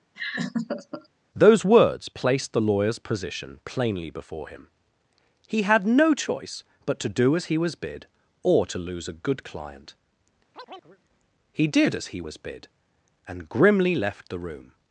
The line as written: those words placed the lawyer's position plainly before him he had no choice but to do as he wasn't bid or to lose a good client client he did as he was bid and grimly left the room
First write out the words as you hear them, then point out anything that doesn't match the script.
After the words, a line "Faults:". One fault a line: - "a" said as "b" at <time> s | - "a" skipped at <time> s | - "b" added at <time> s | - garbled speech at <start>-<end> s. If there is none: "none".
those words placed the lawyer's position plainly before him he had no choice but to do as he was bid or to lose a good client he did as he was bid and grimly left the room
Faults:
- "wasn't" said as "was" at 7.6 s
- "client" skipped at 9.9 s